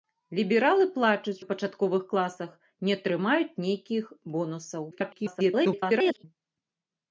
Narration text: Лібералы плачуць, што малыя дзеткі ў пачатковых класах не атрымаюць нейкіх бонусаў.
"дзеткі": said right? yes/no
no